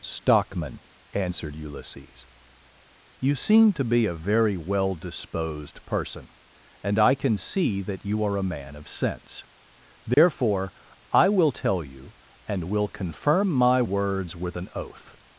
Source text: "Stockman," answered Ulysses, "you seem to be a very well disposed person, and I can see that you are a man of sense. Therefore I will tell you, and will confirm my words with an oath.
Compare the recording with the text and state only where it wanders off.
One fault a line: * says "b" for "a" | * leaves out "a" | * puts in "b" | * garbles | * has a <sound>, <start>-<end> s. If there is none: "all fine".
* has a dropout, 10.1-10.2 s